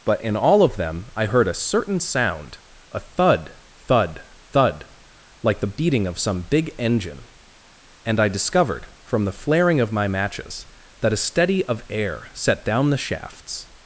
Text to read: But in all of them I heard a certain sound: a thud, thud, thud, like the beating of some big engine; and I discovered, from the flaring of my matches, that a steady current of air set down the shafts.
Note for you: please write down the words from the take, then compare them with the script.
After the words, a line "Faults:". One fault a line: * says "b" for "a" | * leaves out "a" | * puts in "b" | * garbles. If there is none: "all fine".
But in all of them I heard a certain sound: a thud, thud, thud, like the beating of some big engine; and I discovered, from the flaring of my matches, that a steady of air set down the shafts.
Faults:
* leaves out "current"